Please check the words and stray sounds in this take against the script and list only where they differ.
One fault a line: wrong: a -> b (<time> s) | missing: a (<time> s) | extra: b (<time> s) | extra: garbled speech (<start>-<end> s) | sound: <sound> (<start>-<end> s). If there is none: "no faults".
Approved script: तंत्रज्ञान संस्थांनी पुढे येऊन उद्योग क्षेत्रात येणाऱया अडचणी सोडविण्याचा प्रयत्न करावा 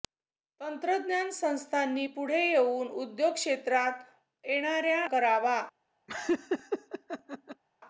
missing: अडचणी सोडविण्याचा प्रयत्न (5.0 s)
sound: laugh (6.1-7.6 s)